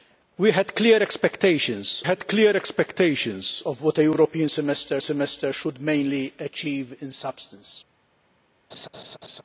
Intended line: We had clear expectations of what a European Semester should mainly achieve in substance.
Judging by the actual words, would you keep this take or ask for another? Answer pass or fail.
fail